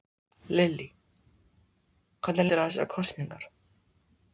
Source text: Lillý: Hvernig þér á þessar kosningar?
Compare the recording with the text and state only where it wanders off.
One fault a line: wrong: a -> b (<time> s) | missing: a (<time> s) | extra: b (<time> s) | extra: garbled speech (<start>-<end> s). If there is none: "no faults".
no faults